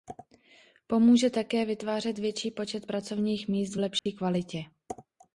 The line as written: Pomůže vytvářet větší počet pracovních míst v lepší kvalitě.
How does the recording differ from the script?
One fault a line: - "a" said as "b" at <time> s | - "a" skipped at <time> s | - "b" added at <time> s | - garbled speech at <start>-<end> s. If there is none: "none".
- "také" added at 1.3 s